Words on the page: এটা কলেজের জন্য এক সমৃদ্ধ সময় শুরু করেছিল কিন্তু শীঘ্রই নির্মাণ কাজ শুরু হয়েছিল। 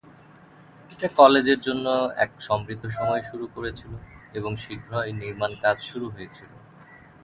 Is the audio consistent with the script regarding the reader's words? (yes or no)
no